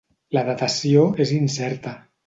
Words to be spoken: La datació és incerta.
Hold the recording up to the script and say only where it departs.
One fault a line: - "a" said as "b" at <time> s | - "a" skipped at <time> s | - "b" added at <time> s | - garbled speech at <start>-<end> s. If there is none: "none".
none